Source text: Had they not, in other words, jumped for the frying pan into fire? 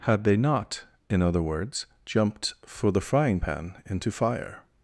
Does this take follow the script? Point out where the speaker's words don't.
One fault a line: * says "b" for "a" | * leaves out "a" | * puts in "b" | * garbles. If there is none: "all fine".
all fine